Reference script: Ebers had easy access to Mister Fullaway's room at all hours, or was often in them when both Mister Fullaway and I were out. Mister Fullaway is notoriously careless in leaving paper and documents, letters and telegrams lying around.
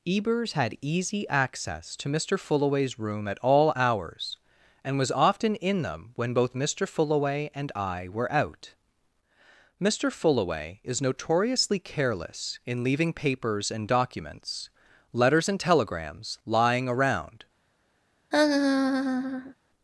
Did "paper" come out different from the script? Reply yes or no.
yes